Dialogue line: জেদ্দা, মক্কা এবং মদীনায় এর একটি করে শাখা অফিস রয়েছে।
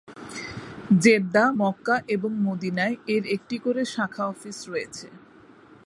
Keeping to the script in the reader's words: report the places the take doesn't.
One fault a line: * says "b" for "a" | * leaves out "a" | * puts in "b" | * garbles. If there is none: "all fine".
all fine